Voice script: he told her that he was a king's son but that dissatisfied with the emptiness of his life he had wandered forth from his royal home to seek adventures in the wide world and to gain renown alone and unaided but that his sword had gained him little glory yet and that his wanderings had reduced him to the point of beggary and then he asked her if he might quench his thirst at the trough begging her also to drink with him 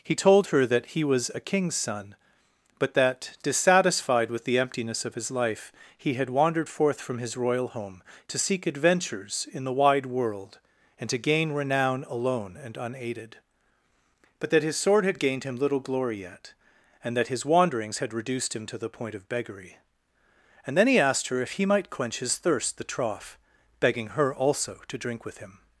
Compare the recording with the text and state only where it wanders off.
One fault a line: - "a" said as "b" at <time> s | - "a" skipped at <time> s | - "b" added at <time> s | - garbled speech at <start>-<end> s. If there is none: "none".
- "at" skipped at 22.8 s